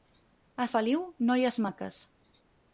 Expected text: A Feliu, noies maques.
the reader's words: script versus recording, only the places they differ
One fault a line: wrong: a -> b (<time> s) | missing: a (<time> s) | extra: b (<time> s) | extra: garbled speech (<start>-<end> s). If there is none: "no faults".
no faults